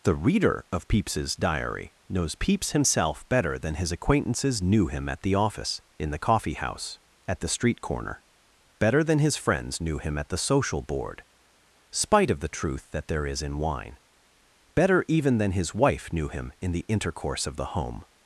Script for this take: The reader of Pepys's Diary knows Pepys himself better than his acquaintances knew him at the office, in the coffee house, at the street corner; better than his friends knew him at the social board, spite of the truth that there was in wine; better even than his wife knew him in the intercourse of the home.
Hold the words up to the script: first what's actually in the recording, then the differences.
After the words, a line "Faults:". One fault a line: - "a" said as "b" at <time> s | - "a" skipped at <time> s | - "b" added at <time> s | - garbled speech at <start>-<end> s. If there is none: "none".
The reader of Pepys's Diary knows Pepys himself better than his acquaintances knew him at the office, in the coffee house, at the street corner; better than his friends knew him at the social board, spite of the truth that there is in wine; better even than his wife knew him in the intercourse of the home.
Faults:
- "was" said as "is" at 13.3 s